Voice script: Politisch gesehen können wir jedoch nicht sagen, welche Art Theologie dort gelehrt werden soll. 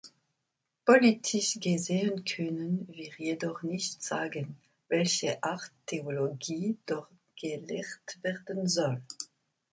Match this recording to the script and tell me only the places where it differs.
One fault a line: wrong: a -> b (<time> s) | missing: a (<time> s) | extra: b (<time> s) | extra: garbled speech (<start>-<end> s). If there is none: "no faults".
no faults